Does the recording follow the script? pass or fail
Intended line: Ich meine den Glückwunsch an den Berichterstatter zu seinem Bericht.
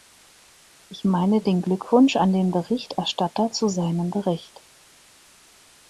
pass